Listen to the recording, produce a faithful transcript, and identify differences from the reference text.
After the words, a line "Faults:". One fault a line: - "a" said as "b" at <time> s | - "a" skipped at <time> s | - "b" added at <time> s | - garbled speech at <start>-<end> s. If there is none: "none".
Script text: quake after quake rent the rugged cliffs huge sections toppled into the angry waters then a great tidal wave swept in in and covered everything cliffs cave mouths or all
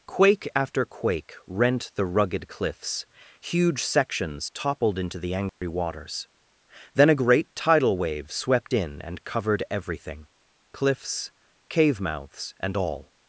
quake after quake rent the rugged cliffs huge sections toppled into the angry waters then a great tidal wave swept in and covered everything cliffs cave mouths and all
Faults:
- "in" skipped at 9.0 s
- "or" said as "and" at 12.6 s